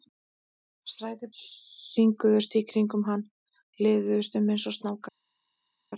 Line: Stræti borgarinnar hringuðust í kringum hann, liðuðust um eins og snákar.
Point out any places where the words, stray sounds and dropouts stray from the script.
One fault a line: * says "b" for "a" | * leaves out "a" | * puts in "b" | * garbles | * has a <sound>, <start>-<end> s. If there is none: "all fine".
* leaves out "borgarinnar"